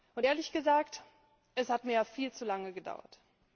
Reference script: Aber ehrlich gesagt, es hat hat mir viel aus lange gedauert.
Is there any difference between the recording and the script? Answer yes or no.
yes